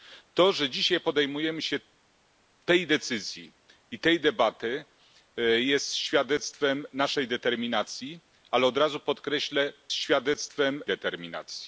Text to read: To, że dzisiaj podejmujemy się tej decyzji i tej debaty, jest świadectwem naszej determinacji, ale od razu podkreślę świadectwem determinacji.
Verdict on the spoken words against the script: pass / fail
pass